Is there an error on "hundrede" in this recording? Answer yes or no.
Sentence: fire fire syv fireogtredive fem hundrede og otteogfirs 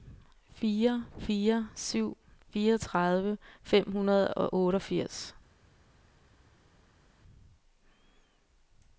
no